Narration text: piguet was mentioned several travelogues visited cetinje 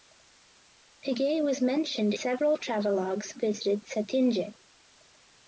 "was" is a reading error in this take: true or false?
false